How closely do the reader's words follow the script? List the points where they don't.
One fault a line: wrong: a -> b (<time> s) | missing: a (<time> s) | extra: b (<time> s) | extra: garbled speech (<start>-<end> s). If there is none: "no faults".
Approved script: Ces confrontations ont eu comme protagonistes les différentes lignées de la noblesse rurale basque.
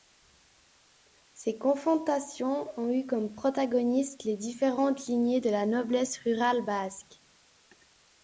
no faults